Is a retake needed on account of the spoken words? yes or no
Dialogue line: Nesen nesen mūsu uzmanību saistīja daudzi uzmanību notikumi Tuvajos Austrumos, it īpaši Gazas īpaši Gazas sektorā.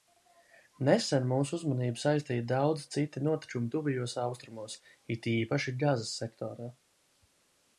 yes